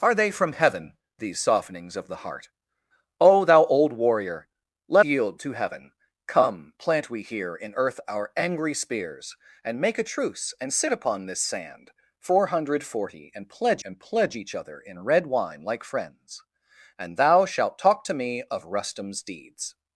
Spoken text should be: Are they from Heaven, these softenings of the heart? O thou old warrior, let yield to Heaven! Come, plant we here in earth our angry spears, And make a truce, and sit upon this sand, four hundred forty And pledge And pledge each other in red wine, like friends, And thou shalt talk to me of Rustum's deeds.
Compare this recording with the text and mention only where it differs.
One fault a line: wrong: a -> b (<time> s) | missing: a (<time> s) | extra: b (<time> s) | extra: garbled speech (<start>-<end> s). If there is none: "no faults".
no faults